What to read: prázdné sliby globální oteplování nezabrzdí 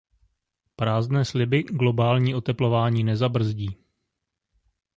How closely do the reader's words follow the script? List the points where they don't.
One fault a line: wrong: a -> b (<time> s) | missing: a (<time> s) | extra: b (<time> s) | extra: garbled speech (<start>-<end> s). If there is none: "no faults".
no faults